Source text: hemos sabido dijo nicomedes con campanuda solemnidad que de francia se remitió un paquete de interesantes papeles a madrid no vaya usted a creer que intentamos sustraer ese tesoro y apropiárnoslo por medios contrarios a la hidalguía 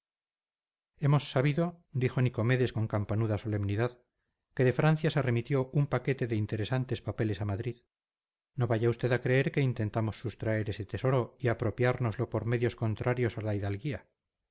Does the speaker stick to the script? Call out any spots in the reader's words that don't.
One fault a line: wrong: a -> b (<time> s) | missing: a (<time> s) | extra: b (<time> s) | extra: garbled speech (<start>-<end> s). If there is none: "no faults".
no faults